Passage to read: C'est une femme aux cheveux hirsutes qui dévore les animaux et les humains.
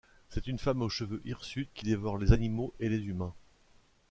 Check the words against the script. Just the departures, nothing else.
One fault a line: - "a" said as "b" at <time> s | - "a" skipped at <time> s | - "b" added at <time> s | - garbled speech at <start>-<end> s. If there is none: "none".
none